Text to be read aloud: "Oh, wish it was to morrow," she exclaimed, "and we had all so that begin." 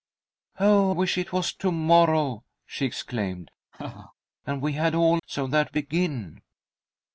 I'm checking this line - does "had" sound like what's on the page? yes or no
yes